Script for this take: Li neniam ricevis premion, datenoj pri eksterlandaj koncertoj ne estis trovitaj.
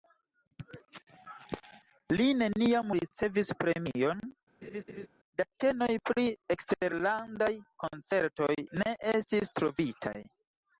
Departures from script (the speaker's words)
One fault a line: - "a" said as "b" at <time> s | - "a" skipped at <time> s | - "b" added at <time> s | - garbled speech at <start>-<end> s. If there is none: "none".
none